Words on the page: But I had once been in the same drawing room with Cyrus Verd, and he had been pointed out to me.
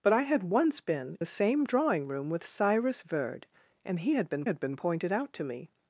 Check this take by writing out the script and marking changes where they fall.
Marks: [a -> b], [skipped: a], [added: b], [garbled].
But I had once been [skipped: in] the same drawing room with Cyrus Verd, and he had been [added: had been] pointed out to me.